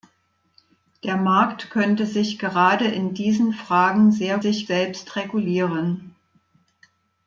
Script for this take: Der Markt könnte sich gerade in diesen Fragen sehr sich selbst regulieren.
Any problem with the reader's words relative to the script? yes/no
no